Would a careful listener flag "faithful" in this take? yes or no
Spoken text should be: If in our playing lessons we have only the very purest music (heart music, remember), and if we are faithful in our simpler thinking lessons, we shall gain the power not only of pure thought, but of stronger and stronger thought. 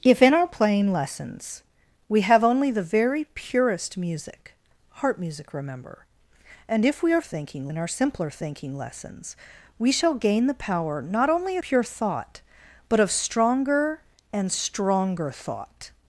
yes